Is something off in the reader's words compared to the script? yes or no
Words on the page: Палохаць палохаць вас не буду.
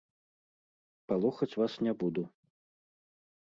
yes